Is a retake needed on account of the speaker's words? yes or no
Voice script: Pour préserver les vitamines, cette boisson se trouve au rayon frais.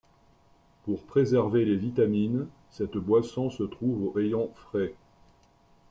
yes